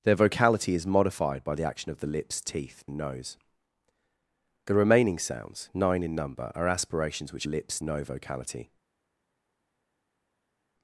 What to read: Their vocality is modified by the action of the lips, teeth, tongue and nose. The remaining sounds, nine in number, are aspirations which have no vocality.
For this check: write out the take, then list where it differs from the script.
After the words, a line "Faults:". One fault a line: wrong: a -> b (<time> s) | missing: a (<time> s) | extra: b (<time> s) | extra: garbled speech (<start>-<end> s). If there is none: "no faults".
Their vocality is modified by the action of the lips, teeth, and nose. The remaining sounds, nine in number, are aspirations which lips no vocality.
Faults:
missing: tongue (2.8 s)
wrong: have -> lips (7.4 s)